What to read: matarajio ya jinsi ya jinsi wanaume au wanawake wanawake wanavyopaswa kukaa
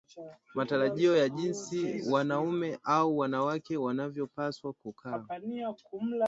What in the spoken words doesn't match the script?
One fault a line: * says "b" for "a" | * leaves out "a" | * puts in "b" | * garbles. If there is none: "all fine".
* leaves out "ya jinsi"
* leaves out "wanawake"